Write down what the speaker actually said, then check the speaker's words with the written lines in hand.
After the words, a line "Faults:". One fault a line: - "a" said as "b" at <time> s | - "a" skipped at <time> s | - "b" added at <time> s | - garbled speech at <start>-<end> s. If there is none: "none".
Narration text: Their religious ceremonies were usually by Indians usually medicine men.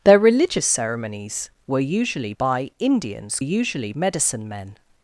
Their religious ceremonies were usually by Indians usually medicine men.
Faults:
none